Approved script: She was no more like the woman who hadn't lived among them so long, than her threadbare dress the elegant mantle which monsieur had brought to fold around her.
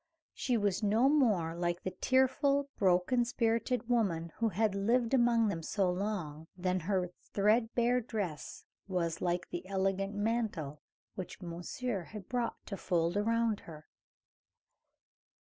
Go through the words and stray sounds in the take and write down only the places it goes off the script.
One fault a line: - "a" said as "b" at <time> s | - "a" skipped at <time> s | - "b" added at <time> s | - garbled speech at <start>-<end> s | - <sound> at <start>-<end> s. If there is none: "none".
- "tearful broken spirited" added at 1.9 s
- "hadn't" said as "had" at 4.5 s
- "was like" added at 8.9 s